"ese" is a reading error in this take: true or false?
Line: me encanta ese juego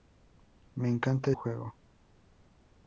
true